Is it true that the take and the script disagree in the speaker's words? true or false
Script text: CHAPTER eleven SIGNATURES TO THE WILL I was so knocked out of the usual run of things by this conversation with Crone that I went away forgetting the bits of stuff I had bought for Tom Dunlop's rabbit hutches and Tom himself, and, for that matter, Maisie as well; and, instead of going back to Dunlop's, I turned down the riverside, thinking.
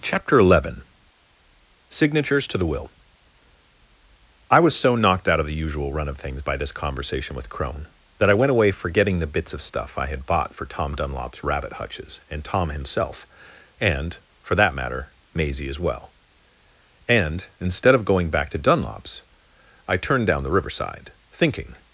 false